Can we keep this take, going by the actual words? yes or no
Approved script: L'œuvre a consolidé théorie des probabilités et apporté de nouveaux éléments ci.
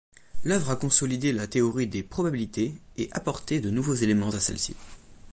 no